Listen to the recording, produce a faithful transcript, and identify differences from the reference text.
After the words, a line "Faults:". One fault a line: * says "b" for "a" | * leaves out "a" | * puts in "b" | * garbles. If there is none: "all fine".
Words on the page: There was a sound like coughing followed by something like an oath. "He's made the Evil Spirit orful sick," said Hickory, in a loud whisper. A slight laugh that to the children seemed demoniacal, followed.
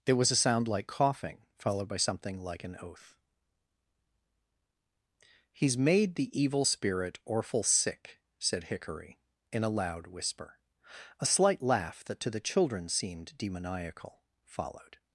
There was a sound like coughing followed by something like an oath. "He's made the Evil Spirit orful sick," said Hickory, in a loud whisper. A slight laugh that to the children seemed demoniacal, followed.
Faults:
all fine